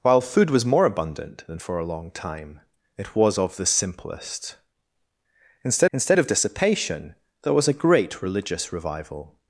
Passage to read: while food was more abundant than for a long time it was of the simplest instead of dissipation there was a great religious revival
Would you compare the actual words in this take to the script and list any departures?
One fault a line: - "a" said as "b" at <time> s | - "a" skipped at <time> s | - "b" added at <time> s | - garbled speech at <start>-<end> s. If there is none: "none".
- "instead" added at 5.9 s